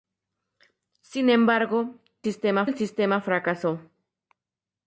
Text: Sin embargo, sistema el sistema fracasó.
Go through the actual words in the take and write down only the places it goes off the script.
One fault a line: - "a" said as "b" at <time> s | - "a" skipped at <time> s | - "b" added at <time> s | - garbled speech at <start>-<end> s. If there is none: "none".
none